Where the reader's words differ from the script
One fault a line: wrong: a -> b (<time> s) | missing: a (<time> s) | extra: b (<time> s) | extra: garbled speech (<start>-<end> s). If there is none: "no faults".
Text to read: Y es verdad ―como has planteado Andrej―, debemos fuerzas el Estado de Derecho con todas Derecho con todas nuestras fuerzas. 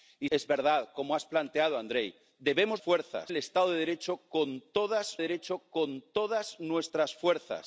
no faults